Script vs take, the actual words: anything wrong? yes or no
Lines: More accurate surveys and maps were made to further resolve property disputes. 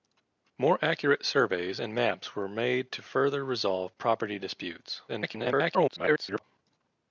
yes